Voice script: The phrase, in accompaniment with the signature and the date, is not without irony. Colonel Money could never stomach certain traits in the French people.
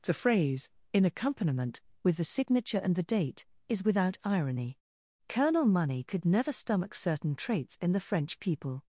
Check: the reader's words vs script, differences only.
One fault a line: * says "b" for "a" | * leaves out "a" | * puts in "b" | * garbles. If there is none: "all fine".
* leaves out "not"